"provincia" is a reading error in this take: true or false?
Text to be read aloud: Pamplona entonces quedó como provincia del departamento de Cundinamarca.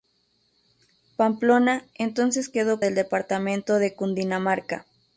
true